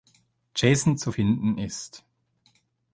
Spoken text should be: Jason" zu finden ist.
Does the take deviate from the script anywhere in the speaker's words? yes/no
no